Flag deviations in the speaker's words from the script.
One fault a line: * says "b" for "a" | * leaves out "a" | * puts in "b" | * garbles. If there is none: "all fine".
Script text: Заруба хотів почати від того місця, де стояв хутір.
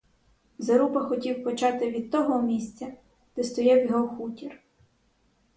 * puts in "його"